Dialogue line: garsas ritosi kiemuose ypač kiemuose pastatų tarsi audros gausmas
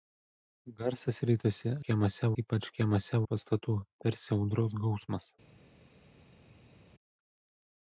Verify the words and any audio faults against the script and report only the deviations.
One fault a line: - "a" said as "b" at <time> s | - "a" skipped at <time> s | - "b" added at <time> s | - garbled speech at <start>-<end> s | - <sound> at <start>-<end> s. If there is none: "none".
none